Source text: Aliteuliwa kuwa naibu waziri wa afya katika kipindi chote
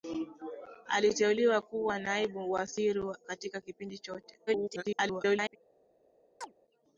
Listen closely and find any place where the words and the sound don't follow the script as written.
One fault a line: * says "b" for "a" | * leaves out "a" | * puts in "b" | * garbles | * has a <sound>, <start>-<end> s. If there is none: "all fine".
* leaves out "afya"
* garbles
* has a chirp, 6.4-6.5 s